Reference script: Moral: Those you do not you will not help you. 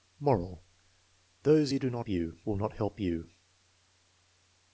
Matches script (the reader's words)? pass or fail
pass